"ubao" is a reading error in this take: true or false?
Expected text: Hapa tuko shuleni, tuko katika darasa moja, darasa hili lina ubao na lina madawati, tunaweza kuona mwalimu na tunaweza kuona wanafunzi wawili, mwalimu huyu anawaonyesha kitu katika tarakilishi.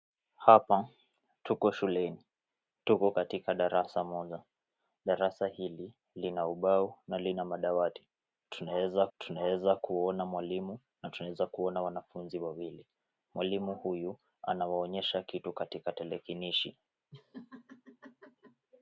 false